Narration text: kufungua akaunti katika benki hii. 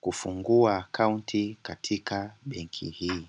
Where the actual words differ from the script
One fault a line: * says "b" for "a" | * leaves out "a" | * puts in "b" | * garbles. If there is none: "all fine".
all fine